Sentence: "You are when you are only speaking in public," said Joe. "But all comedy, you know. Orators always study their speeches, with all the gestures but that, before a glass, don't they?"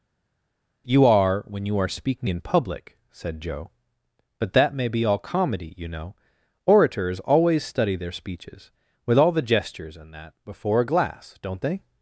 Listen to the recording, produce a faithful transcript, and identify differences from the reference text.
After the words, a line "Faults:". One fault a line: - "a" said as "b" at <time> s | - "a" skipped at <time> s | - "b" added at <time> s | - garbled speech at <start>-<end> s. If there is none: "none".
"You are when you are speaking in public," said Joe. "But that may be all comedy, you know. Orators always study their speeches, with all the gestures and that, before a glass, don't they?"
Faults:
- "only" skipped at 1.9 s
- "that may be" added at 4.5 s
- "but" said as "and" at 10.0 s